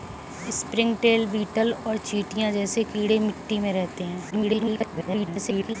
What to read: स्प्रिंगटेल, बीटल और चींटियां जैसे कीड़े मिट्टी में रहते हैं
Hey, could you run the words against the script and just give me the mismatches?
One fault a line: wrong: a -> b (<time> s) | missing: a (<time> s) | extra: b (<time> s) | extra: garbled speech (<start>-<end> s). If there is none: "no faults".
extra: garbled speech (4.3-5.8 s)